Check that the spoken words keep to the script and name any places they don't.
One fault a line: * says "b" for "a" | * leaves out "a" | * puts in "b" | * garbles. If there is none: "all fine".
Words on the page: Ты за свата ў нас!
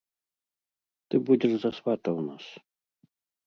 * puts in "будзеш"